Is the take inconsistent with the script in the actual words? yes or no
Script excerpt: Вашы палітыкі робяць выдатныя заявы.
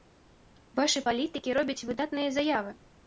no